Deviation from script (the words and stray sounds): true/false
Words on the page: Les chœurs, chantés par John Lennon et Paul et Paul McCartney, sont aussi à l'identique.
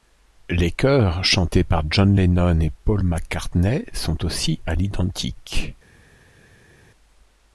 true